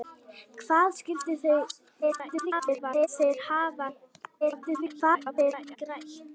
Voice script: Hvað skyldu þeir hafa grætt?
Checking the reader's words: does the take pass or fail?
fail